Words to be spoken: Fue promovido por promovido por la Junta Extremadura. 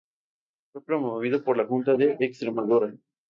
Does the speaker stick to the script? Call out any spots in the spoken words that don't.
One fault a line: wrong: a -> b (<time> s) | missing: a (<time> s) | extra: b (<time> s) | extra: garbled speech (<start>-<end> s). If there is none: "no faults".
missing: promovido por (1.6 s)
extra: de (1.9 s)